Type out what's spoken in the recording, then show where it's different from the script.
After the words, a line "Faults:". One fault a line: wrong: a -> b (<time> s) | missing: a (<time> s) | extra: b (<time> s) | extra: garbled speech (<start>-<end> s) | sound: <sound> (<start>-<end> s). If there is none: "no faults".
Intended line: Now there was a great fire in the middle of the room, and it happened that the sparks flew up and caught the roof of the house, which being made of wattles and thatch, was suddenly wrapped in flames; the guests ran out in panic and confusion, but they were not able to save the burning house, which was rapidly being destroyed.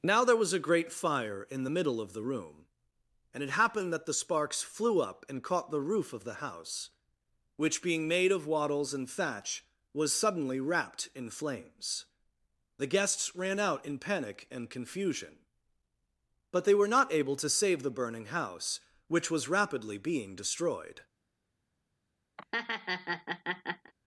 Now there was a great fire in the middle of the room, and it happened that the sparks flew up and caught the roof of the house, which being made of wattles and thatch, was suddenly wrapped in flames; the guests ran out in panic and confusion, but they were not able to save the burning house, which was rapidly being destroyed.
Faults:
sound: laugh (22.4-23.9 s)